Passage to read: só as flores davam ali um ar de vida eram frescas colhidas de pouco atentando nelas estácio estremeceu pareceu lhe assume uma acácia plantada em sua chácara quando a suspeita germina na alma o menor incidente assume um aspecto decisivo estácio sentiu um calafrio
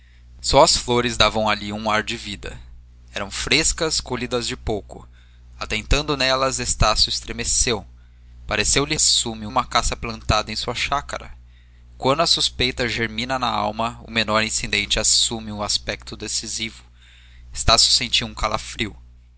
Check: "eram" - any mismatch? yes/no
no